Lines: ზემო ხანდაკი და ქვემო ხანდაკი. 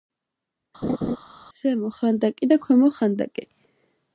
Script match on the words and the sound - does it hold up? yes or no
no